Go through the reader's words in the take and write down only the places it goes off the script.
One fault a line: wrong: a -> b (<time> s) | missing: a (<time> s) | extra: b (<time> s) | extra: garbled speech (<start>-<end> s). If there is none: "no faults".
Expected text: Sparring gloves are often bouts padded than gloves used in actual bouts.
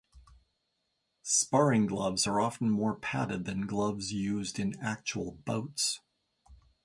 wrong: bouts -> more (2.7 s)